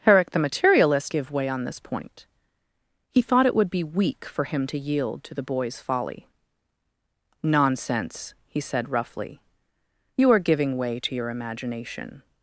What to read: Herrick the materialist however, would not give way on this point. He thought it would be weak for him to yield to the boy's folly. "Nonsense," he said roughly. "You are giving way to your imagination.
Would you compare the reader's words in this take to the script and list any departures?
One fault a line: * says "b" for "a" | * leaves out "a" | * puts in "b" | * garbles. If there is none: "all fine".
* leaves out "however would not"